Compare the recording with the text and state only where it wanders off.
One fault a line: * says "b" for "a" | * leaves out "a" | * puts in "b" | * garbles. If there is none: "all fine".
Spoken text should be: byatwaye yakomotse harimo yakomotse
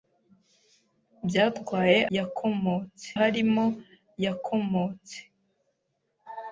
all fine